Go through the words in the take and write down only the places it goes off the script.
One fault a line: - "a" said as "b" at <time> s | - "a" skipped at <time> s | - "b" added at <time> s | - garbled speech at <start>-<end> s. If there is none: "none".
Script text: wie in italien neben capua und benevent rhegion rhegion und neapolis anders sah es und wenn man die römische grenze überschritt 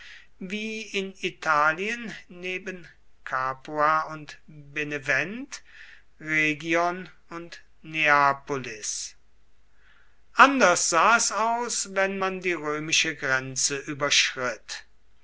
- "rhegion" skipped at 7.1 s
- "und" said as "aus" at 11.3 s